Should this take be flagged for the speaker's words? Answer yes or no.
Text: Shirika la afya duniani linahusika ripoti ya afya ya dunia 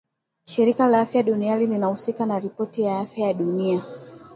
yes